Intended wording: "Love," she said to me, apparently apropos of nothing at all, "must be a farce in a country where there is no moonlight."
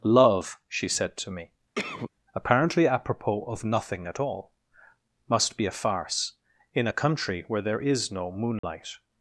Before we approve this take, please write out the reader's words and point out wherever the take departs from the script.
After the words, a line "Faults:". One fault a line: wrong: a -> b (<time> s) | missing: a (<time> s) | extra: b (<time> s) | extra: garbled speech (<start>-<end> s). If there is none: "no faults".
"Love," she said to me, apparently apropos of nothing at all, "must be a farce in a country where there is no moonlight."
Faults:
no faults